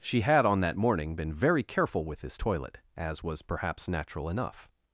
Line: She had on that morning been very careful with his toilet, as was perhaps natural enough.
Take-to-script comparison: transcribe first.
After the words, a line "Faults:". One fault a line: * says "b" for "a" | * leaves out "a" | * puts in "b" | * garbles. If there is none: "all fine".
She had on that morning been very careful with his toilet, as was perhaps natural enough.
Faults:
all fine